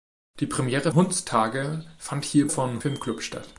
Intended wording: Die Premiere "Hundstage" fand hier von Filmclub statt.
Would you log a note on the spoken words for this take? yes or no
no